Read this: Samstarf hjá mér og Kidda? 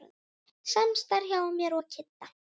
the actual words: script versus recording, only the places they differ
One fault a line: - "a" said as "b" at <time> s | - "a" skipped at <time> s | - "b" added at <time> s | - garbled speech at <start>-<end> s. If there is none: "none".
none